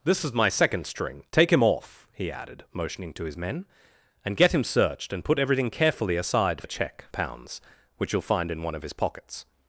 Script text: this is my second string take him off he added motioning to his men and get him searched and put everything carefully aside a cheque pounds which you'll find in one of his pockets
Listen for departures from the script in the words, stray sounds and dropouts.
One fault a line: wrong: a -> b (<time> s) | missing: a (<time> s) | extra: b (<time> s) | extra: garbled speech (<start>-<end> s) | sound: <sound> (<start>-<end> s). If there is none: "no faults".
no faults